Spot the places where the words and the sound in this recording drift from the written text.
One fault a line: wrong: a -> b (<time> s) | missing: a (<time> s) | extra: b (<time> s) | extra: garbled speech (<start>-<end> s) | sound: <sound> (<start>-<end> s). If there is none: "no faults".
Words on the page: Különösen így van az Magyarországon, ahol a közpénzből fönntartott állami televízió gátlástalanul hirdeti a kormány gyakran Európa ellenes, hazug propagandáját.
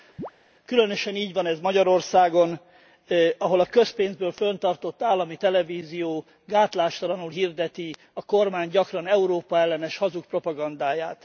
sound: chirp (0.2-0.3 s)
wrong: az -> ez (1.5 s)